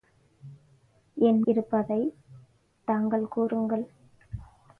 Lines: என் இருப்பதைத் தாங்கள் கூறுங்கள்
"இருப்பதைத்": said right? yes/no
yes